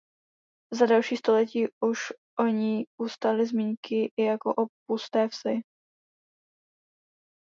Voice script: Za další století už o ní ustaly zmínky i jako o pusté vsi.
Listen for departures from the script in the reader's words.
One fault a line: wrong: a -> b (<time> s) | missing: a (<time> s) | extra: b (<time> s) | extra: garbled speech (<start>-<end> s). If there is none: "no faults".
no faults